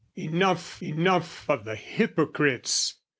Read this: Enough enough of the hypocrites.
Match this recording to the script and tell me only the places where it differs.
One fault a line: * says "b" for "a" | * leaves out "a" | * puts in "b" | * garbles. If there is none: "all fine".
all fine